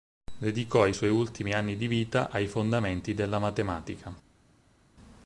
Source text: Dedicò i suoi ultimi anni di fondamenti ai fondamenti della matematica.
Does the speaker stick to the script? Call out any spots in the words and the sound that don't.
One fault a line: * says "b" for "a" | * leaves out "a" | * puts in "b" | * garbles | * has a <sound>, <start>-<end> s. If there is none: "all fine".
* says "vita" for "fondamenti"